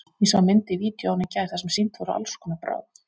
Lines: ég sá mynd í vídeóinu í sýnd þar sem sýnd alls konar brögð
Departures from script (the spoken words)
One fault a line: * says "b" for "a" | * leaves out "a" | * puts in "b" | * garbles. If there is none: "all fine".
* says "gær" for "sýnd"
* puts in "voru"